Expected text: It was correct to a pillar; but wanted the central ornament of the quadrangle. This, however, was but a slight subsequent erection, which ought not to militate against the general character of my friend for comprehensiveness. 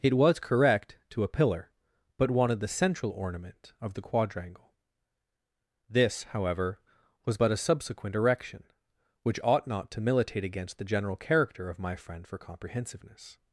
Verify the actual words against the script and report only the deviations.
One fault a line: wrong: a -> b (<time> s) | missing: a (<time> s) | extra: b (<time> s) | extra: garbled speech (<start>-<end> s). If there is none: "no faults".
missing: slight (7.6 s)